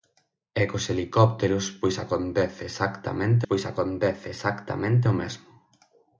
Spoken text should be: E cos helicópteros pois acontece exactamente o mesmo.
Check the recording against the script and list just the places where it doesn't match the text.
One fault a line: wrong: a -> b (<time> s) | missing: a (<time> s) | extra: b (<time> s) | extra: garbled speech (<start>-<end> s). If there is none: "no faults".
extra: pois acontece exactamente (3.5 s)